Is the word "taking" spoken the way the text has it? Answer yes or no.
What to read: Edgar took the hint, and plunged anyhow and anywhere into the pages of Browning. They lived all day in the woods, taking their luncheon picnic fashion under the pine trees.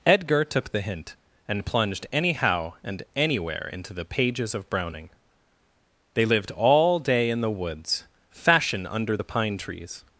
no